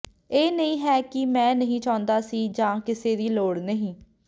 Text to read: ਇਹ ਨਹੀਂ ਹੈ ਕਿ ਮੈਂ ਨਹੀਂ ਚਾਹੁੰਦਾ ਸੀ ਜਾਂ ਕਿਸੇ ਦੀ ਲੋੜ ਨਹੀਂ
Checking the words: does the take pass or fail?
pass